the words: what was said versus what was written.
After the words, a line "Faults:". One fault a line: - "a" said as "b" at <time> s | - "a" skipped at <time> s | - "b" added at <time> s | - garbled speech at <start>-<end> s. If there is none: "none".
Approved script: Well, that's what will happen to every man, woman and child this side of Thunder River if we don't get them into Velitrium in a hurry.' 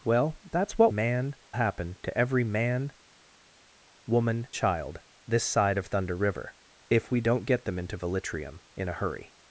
Well, that's what man happen to every man, woman child this side of Thunder River if we don't get them into Velitrium in a hurry.'
Faults:
- "will" said as "man" at 0.9 s
- "and" skipped at 4.5 s